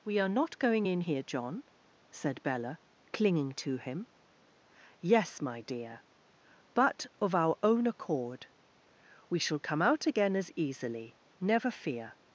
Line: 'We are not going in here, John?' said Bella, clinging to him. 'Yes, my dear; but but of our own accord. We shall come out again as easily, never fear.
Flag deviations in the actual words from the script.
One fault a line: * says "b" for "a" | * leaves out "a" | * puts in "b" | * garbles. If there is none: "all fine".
* leaves out "but"